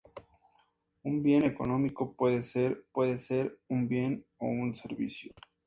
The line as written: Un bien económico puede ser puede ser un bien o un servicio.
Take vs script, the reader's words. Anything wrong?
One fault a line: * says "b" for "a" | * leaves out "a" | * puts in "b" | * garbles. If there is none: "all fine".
all fine